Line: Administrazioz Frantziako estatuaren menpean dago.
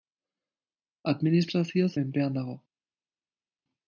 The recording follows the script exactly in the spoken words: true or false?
false